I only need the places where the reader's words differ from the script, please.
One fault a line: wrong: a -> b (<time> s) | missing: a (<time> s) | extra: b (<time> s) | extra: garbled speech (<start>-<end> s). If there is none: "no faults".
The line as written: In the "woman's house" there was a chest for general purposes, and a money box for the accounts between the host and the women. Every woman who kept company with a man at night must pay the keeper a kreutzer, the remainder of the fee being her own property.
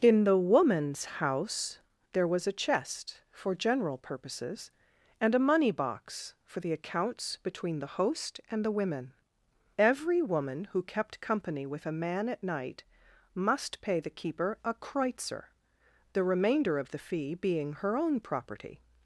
no faults